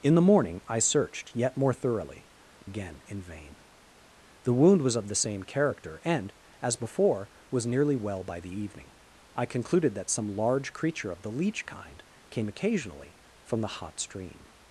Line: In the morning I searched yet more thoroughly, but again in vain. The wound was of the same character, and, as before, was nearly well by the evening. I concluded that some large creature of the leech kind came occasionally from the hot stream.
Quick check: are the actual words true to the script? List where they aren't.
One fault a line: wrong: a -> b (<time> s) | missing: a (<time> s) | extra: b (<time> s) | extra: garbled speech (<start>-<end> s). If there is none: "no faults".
missing: but (2.2 s)